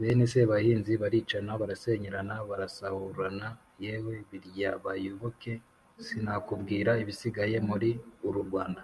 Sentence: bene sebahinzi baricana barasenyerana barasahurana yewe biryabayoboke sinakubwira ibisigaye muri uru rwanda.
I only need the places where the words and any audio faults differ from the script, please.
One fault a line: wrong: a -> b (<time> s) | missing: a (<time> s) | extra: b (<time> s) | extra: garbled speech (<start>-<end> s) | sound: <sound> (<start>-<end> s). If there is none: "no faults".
no faults